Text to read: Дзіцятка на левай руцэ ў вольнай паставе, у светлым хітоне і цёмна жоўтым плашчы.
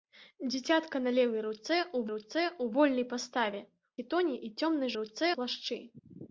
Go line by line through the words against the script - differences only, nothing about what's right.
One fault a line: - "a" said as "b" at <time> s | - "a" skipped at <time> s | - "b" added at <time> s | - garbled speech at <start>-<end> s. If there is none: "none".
- "руцэ ў" added at 2.1 s
- "у светлым" skipped at 3.6 s
- "жоўтым" said as "руцэ" at 5.0 s